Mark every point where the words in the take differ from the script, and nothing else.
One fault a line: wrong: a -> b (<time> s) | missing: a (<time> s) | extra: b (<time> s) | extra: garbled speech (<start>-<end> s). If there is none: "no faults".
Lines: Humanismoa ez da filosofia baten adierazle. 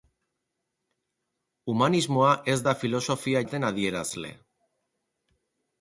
no faults